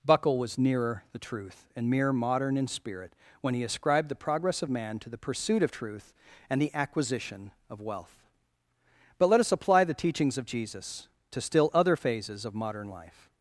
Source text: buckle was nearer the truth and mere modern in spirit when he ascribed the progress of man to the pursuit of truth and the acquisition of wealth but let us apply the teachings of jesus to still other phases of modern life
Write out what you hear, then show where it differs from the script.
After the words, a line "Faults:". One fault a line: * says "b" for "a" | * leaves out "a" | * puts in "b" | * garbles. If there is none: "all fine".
buckle was nearer the truth and mere modern in spirit when he ascribed the progress of man to the pursuit of truth and the acquisition of wealth but let us apply the teachings of jesus to still other phases of modern life
Faults:
all fine